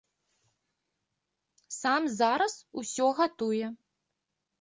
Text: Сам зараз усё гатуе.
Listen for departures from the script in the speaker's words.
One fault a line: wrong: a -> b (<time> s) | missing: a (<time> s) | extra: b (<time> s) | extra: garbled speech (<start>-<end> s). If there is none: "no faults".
no faults